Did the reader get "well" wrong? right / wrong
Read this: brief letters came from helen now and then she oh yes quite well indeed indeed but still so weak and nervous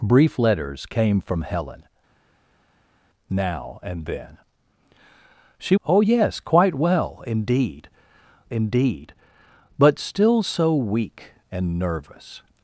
right